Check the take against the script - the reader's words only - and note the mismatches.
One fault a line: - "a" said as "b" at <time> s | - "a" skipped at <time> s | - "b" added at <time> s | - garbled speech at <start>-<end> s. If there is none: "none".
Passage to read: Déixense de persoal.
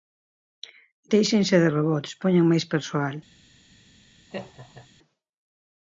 - "robots poñan máis" added at 1.7 s